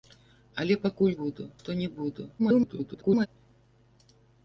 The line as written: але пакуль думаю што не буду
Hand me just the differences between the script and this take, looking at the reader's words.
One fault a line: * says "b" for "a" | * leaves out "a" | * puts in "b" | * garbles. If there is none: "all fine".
* says "буду" for "думаю"
* garbles